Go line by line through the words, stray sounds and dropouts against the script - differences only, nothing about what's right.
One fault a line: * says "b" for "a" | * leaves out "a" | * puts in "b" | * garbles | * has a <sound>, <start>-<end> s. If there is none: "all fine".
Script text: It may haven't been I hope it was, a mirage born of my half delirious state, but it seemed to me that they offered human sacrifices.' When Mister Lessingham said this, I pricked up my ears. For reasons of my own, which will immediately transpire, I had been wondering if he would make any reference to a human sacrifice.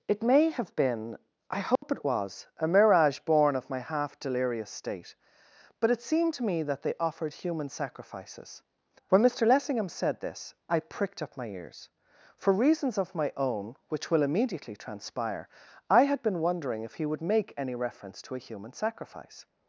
* says "have" for "haven't"
* has a dropout, 1.8-1.8 s